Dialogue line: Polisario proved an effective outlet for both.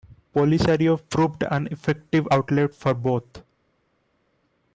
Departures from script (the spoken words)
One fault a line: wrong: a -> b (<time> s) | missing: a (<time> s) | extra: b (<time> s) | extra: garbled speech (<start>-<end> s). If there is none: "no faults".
no faults